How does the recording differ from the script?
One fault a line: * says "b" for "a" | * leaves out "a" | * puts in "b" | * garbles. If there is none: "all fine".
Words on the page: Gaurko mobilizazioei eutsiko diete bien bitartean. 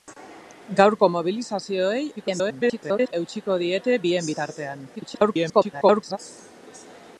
* garbles
* garbles